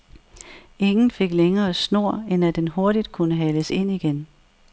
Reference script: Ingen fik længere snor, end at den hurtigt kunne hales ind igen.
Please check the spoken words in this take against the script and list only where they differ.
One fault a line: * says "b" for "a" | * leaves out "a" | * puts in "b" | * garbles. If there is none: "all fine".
all fine